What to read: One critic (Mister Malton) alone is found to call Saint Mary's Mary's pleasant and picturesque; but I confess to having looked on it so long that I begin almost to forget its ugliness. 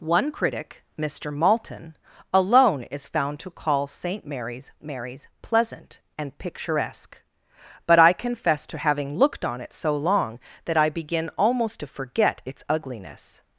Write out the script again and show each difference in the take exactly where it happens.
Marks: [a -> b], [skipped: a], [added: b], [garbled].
One critic (Mister Malton) alone is found to call Saint Mary's Mary's pleasant and picturesque; but I confess to having looked on it so long that I begin almost to forget its ugliness.